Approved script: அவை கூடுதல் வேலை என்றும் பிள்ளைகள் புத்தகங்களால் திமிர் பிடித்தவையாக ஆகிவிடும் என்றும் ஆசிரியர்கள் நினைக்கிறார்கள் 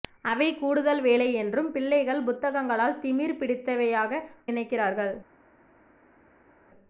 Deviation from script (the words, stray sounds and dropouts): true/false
true